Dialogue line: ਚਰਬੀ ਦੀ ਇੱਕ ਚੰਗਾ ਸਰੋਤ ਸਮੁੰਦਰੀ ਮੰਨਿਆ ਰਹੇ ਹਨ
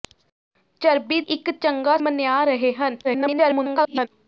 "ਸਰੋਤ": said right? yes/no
no